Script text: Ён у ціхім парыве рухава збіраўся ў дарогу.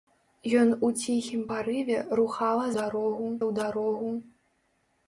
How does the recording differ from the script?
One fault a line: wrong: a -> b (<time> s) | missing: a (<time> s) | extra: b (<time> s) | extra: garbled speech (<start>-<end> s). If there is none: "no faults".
wrong: збіраўся -> дарогу (2.8 s)